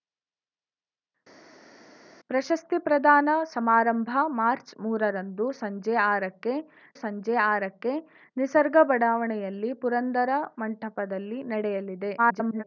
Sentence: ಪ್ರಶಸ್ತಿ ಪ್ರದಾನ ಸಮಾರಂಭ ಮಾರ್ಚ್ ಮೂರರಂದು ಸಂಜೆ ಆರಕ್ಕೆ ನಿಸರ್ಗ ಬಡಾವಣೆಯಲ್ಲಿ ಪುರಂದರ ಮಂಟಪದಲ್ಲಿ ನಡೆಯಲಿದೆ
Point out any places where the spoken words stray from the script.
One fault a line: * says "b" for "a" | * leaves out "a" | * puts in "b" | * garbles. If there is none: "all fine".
* puts in "ಸಂಜೆ ಆರಕ್ಕೆ"
* garbles